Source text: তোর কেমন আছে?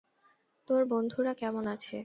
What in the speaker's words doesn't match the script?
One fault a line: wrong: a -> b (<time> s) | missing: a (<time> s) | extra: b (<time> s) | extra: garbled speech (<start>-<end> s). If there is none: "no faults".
extra: বন্ধুরা (0.9 s)